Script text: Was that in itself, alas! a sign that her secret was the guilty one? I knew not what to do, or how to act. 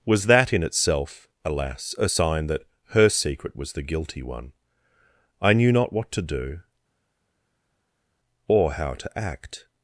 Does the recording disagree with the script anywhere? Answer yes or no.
no